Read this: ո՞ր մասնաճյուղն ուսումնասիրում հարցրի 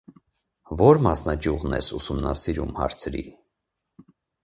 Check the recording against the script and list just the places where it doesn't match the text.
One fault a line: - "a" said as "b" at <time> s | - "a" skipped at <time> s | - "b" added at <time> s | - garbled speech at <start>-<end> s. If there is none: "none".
- "ես" added at 1.8 s